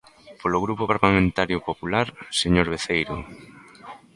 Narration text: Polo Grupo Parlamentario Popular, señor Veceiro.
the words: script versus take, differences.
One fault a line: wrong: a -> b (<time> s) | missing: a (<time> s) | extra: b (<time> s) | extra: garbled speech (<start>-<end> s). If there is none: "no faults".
no faults